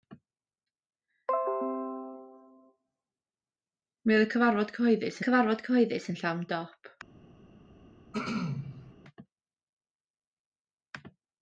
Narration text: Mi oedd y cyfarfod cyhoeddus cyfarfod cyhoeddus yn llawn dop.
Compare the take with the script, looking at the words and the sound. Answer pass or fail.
fail